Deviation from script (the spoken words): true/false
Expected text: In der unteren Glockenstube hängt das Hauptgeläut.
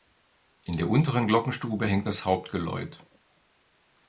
false